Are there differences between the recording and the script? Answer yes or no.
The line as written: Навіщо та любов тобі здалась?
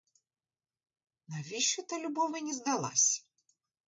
yes